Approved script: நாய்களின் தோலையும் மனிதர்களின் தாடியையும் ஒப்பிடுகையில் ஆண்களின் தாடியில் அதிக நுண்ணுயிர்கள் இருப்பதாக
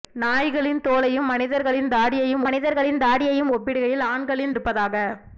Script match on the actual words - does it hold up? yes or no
no